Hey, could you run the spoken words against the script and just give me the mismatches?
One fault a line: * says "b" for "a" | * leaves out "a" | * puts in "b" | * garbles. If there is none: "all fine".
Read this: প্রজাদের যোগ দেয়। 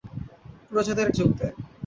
all fine